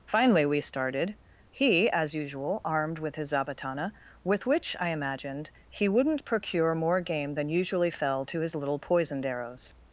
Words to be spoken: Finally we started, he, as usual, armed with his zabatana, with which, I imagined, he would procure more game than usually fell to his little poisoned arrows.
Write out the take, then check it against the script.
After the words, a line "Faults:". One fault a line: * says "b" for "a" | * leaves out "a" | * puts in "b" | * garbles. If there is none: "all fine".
Finally we started, he, as usual, armed with his zabatana, with which, I imagined, he wouldn't procure more game than usually fell to his little poisoned arrows.
Faults:
* says "wouldn't" for "would"